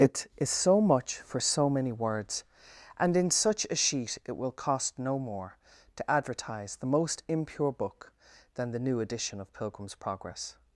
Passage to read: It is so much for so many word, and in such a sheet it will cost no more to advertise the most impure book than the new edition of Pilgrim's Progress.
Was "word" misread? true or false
true